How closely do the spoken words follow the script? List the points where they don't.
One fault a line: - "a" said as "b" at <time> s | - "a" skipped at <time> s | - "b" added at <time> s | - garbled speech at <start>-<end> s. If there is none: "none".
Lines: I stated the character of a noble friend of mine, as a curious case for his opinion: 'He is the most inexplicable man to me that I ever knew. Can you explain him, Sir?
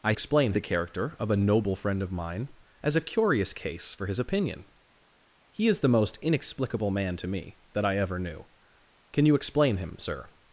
- "stated" said as "explain" at 0.1 s